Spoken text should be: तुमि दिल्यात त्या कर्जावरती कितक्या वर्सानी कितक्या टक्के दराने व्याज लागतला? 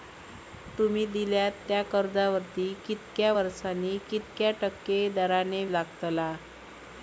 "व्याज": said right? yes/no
no